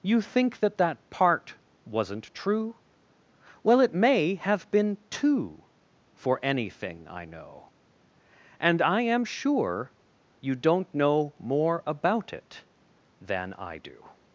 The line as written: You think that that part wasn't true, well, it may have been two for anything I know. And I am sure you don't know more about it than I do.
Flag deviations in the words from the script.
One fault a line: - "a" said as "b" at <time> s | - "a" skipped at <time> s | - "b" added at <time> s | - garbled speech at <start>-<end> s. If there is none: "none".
none